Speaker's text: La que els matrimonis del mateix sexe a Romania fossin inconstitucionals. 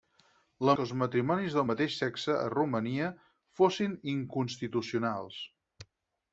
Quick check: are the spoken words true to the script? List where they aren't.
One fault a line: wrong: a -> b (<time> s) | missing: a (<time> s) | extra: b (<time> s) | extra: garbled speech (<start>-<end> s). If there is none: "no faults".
no faults